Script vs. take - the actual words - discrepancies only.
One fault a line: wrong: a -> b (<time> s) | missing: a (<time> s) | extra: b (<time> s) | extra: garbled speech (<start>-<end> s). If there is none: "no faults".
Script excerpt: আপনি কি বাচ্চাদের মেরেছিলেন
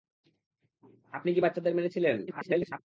extra: garbled speech (2.3-2.8 s)